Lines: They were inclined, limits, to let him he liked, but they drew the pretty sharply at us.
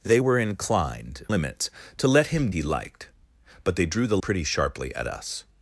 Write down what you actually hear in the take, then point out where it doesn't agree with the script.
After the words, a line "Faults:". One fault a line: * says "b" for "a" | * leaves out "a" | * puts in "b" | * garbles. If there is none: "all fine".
They were inclined, limits, to let him he liked, but they drew the pretty sharply at us.
Faults:
all fine